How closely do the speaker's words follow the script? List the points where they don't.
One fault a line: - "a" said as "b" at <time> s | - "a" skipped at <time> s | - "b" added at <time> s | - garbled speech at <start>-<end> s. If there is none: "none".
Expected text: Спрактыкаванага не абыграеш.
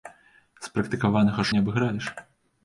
none